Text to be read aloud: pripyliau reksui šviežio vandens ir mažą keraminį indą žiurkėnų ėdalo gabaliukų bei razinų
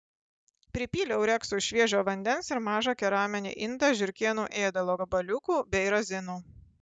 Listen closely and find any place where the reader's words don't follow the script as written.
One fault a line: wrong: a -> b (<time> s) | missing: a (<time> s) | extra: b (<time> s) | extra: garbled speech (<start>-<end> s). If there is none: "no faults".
no faults